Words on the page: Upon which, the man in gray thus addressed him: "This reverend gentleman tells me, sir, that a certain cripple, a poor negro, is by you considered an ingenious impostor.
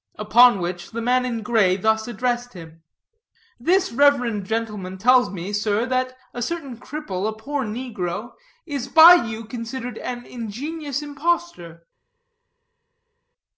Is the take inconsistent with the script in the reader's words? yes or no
no